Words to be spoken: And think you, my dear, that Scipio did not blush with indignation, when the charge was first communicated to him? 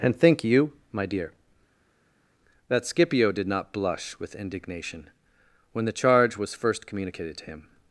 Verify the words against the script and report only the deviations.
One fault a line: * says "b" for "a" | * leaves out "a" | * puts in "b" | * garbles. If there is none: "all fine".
all fine